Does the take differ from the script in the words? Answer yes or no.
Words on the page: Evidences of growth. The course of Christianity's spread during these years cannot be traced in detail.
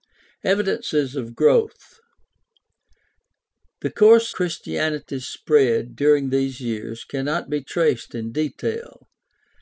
yes